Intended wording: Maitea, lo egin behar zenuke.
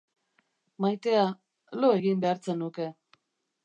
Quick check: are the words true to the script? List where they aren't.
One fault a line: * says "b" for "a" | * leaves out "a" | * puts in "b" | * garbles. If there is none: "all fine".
all fine